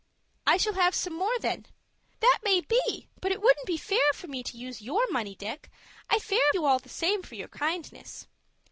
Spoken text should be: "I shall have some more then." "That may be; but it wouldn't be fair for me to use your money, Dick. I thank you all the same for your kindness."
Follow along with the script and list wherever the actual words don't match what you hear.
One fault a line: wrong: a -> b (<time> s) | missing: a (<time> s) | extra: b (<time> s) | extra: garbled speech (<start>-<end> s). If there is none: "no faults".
wrong: thank -> fair (6.2 s)